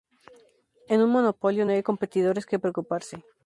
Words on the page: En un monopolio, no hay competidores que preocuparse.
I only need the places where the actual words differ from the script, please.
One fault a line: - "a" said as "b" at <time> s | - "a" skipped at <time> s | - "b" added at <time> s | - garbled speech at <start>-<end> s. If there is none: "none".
none